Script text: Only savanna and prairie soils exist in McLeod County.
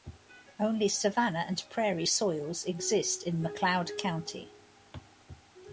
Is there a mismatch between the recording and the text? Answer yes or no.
no